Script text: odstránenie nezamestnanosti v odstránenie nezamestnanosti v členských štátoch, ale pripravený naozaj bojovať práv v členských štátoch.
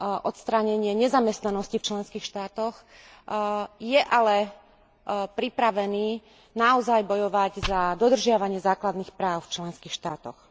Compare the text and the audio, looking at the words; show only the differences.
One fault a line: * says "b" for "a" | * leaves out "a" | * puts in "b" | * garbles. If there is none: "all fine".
* leaves out "odstránenie nezamestnanosti v"
* puts in "je"
* puts in "za dodržiavanie základných"